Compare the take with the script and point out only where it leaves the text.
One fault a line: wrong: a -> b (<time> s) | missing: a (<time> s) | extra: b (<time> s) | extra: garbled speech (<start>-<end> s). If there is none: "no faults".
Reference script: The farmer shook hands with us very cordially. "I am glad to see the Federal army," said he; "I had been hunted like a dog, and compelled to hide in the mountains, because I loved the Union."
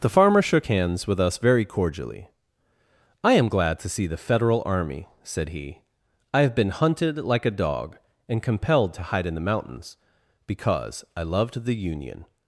wrong: had -> have (6.4 s)